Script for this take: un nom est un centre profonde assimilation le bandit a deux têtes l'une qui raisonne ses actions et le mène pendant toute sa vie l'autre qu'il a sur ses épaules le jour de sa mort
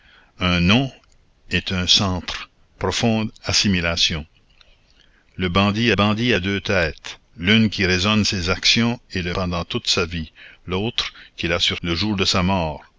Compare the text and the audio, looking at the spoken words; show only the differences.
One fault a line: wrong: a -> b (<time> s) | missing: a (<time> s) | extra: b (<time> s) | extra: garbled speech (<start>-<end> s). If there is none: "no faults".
extra: bandit (5.9 s)
missing: mène (9.4 s)
missing: ses épaules (11.8 s)